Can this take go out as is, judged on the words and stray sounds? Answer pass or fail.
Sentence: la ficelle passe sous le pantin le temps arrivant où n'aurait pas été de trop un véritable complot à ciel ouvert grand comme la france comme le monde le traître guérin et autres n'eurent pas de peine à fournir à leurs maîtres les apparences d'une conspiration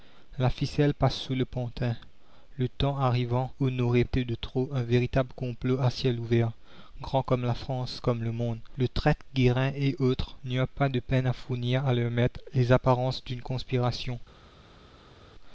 fail